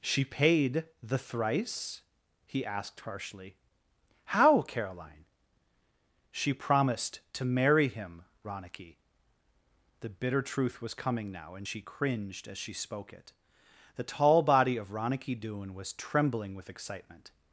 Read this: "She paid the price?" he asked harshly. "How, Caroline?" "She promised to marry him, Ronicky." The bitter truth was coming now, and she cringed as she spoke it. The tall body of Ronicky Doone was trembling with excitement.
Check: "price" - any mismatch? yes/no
yes